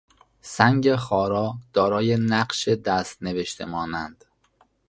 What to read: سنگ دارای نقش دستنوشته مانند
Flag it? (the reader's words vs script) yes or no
yes